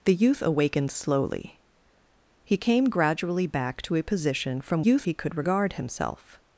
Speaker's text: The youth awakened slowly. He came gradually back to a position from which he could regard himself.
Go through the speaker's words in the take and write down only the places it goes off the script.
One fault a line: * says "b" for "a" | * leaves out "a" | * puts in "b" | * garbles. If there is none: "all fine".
* says "youth" for "which"